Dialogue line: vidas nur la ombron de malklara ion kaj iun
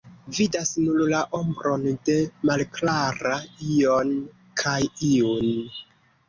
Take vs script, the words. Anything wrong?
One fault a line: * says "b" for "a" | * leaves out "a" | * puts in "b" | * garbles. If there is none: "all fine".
all fine